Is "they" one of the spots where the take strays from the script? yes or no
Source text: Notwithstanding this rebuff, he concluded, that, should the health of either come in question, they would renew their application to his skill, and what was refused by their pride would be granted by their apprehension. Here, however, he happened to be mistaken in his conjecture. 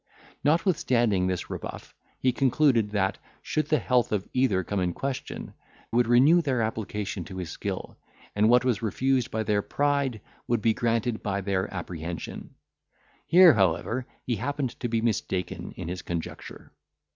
yes